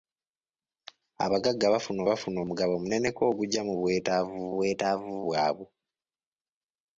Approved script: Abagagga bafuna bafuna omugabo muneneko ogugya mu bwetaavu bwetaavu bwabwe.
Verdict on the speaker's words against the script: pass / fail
pass